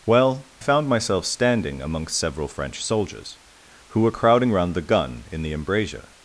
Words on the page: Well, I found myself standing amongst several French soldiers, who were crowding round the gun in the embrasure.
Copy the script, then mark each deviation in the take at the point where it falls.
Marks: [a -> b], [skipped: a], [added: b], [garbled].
Well, [skipped: I] found myself standing amongst several French soldiers, who were crowding round the gun in the embrasure.